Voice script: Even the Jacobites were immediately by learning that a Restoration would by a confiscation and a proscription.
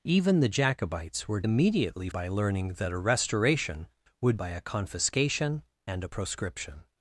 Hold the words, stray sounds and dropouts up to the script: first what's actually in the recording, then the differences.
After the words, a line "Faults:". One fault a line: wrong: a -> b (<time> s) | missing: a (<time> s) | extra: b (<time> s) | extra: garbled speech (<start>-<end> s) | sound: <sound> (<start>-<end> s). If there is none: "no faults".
Even the Jacobites were immediately by learning that a Restoration would by a confiscation and a proscription.
Faults:
no faults